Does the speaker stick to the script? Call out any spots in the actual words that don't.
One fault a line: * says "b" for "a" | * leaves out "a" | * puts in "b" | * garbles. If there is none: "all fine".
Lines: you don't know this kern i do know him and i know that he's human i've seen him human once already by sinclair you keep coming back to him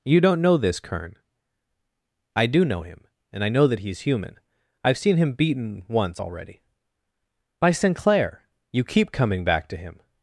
* says "beaten" for "human"